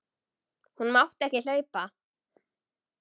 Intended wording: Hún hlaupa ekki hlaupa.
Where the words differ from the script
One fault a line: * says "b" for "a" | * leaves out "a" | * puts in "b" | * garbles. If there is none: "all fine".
* says "mátti" for "hlaupa"